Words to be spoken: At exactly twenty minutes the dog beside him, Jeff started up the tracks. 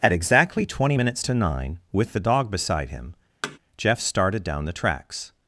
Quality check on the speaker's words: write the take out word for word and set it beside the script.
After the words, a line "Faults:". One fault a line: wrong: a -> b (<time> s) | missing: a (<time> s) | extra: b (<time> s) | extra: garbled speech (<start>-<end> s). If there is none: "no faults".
At exactly twenty minutes to nine, with the dog beside him, Jeff started down the tracks.
Faults:
extra: to nine with (1.2 s)
wrong: up -> down (4.4 s)